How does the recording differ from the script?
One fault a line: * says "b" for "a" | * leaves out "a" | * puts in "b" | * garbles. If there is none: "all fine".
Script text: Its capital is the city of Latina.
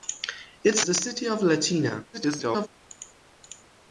* leaves out "capital is"
* garbles